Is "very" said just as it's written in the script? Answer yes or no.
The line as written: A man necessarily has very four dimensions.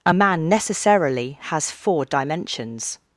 no